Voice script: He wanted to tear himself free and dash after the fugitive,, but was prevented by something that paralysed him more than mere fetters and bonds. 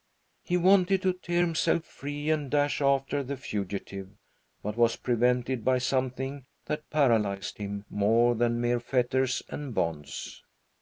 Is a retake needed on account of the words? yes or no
no